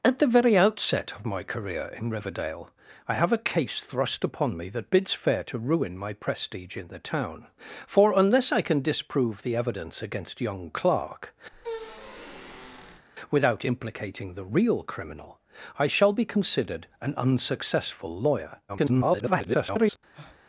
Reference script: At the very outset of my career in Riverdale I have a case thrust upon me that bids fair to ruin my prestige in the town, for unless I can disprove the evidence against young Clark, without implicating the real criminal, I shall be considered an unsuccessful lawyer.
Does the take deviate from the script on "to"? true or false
false